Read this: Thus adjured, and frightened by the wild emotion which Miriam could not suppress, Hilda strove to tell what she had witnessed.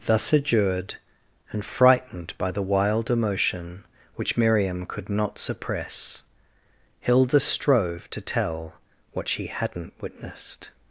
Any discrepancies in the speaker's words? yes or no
yes